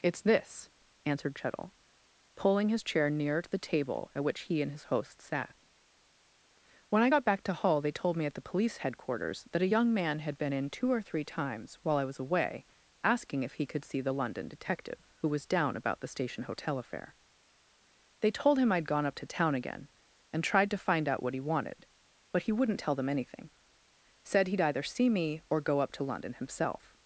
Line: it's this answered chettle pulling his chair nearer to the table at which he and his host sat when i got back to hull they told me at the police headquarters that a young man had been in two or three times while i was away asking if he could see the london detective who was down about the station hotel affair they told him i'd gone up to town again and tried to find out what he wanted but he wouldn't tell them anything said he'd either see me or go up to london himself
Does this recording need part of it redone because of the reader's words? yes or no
no